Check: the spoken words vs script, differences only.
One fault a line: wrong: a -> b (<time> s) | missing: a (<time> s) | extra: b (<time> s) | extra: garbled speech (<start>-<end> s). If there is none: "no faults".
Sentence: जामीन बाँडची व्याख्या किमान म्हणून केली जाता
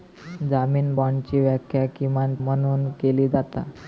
no faults